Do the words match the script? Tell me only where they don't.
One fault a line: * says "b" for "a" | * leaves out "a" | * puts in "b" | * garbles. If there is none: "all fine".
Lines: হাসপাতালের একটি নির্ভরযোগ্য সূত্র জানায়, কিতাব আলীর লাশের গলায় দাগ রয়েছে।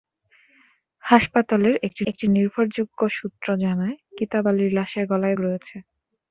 * puts in "একটি"
* leaves out "দাগ"